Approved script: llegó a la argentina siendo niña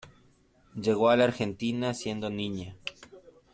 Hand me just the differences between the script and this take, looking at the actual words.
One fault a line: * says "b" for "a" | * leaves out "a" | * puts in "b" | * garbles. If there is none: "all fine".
all fine